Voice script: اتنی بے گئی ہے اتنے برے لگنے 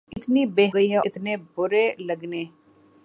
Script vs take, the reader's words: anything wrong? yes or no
no